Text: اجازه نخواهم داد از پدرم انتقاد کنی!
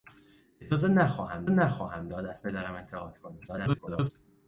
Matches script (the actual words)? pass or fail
fail